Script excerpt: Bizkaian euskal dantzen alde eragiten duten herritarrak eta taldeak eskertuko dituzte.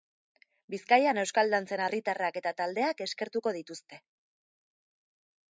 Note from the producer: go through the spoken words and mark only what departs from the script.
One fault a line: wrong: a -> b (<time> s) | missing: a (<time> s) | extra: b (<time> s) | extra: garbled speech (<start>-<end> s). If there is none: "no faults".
missing: alde eragiten duten (1.8 s)